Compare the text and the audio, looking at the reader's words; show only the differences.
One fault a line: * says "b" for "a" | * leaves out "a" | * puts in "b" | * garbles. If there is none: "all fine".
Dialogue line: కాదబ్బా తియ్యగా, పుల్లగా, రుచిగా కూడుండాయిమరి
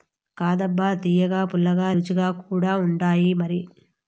all fine